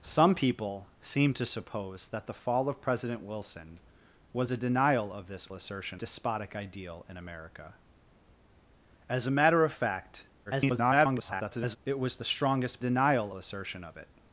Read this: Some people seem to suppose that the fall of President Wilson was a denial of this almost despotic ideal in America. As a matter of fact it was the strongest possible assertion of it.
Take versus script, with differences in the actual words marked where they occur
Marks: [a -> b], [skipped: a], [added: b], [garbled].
Some people seem to suppose that the fall of President Wilson was a denial of this [almost -> assertion] despotic ideal in America. As a matter of fact [garbled] it was the strongest [possible -> denial] assertion of it.